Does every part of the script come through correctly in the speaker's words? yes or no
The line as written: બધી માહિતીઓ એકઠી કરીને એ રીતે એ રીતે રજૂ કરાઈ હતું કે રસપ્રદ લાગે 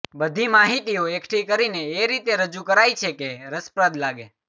no